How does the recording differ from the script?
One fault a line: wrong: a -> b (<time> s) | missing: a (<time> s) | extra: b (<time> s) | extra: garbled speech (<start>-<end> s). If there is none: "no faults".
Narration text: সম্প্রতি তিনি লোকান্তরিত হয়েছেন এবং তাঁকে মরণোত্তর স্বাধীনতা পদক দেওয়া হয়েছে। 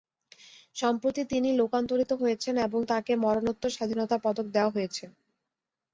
no faults